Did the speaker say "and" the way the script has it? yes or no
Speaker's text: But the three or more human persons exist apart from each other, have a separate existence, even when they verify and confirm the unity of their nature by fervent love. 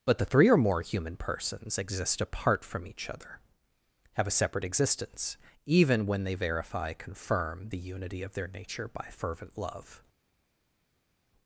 no